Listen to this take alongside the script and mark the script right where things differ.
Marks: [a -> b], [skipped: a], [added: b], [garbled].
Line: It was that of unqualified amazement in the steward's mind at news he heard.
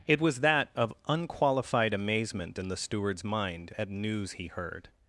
It was that of unqualified amazement in the steward's mind at news he heard.